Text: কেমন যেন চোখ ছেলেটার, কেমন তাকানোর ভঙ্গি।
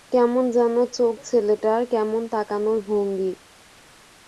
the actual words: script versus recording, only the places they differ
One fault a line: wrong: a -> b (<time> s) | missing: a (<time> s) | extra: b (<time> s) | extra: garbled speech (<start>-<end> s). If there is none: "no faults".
no faults